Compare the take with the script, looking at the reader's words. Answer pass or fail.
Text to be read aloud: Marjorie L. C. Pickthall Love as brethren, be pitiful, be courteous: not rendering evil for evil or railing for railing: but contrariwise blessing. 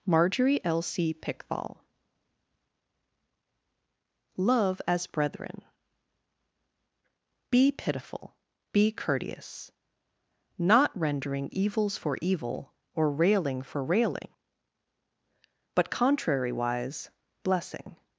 fail